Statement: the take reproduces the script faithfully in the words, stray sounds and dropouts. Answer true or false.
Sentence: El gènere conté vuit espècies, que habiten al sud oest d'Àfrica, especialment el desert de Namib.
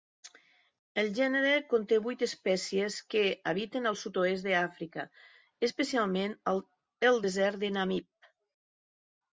true